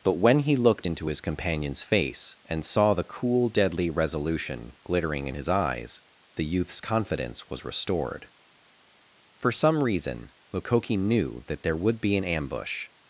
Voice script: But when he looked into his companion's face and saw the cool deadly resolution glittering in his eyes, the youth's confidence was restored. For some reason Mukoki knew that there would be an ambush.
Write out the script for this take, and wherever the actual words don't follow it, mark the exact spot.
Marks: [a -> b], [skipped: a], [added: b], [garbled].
But when he looked into his companion's face and saw the cool deadly resolution glittering in his eyes, the youth's confidence was restored. For some reason Mukoki knew that there would be an ambush.